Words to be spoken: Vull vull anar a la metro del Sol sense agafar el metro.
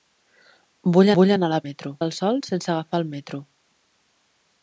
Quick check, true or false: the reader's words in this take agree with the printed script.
true